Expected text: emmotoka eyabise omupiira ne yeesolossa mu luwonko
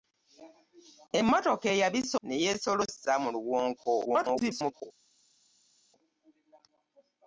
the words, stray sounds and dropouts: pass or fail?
fail